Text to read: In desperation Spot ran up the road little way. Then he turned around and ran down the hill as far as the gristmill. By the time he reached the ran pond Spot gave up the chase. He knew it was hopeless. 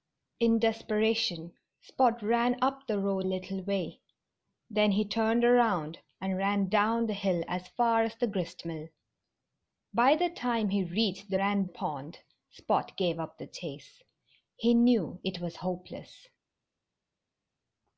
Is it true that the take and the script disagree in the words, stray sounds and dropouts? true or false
false